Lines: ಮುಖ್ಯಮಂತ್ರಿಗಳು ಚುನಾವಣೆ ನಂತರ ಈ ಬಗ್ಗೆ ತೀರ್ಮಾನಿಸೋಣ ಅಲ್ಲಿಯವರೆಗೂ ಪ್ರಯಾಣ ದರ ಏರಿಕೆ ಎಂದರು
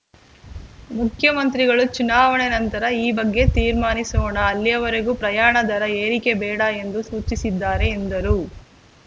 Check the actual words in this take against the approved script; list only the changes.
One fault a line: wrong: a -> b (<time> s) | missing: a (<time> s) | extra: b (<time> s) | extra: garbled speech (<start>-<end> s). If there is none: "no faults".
extra: ಬೇಡ ಎಂದು ಸೂಚಿಸಿದ್ದಾರೆ (6.4 s)